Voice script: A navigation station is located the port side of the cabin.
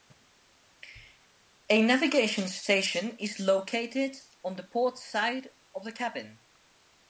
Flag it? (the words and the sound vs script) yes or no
yes